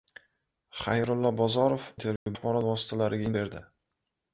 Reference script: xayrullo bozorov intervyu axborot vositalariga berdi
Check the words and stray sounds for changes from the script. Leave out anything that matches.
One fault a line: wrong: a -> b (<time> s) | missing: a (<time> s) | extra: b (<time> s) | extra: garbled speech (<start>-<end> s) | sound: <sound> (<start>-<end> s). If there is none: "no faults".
sound: dropout (2.2-2.3 s)